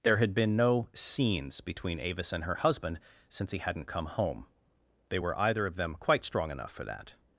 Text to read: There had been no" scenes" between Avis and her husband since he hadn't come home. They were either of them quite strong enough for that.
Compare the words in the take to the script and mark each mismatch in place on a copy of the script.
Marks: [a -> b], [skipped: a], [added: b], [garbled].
There had been no" scenes" between Avis and her husband since he hadn't come home. They were either of them quite strong enough for that.